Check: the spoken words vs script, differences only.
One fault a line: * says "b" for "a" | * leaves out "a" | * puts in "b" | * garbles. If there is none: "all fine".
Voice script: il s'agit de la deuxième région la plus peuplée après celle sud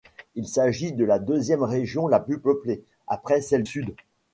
all fine